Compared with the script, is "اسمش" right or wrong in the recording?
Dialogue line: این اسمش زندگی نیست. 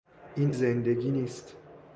wrong